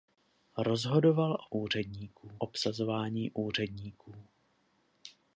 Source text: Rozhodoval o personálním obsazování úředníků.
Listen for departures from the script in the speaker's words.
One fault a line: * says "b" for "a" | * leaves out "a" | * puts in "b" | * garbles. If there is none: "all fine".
* says "úředníků" for "personálním"